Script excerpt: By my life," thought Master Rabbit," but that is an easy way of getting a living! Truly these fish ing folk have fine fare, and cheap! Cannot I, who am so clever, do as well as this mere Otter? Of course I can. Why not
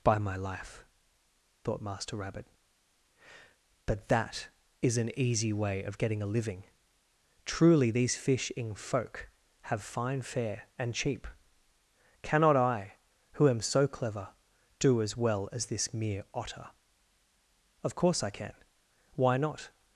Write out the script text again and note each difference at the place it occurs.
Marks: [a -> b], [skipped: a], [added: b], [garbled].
By my life," thought Master Rabbit," but that is an easy way of getting a living! Truly these fish ing folk have fine fare, and cheap! Cannot I, who am so clever, do as well as this mere Otter? Of course I can. Why not